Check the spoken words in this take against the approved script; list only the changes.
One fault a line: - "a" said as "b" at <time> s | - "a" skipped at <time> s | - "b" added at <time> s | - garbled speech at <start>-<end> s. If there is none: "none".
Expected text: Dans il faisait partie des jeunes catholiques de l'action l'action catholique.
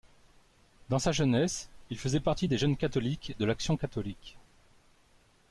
- "sa jeunesse" added at 1.0 s
- "l'action" skipped at 3.8 s